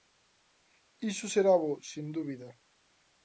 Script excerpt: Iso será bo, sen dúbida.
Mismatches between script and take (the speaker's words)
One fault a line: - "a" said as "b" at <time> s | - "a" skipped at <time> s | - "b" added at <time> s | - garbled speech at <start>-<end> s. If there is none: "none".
none